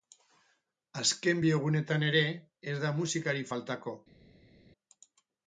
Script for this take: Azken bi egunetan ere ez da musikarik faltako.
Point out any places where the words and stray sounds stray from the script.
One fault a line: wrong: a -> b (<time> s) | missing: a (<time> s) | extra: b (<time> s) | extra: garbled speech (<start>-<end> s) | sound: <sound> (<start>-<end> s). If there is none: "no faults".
no faults